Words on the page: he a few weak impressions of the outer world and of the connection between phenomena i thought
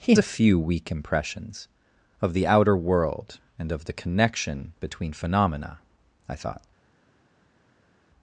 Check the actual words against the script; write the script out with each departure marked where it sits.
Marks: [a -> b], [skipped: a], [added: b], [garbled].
he a few weak impressions of the outer world and of the connection between phenomena i thought